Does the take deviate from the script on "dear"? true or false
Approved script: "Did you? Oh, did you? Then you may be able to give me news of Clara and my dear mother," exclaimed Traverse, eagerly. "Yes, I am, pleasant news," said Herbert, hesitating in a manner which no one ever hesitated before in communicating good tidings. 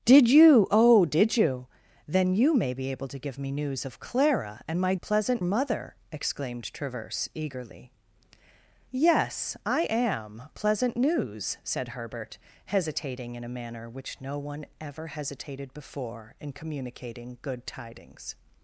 true